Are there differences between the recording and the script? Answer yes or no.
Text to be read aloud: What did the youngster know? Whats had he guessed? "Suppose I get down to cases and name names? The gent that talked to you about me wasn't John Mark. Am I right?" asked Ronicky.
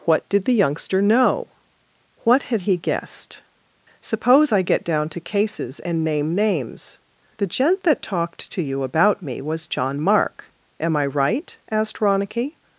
yes